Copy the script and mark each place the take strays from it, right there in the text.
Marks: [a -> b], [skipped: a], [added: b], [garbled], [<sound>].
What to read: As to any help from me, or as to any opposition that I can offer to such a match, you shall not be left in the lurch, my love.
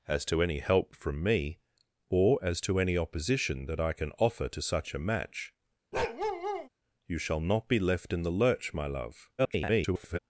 As to any help from me, or as to any opposition that I can offer to such a match, [bark] you shall not be left in the lurch, my love. [garbled]